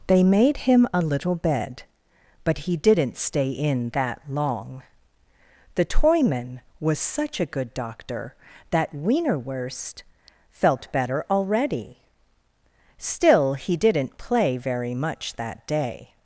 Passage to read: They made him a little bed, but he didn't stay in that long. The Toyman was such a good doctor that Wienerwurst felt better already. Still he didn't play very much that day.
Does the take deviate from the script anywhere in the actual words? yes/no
no